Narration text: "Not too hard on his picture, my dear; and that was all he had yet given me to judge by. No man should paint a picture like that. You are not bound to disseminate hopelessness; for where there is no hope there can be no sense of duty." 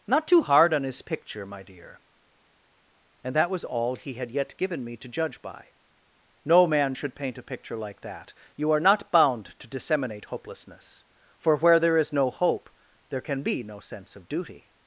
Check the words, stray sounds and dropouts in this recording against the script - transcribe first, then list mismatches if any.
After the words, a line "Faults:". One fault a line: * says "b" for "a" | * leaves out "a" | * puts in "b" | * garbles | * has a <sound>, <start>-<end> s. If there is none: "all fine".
"Not too hard on his picture, my dear; and that was all he had yet given me to judge by. No man should paint a picture like that. You are not bound to disseminate hopelessness; for where there is no hope there can be no sense of duty."
Faults:
all fine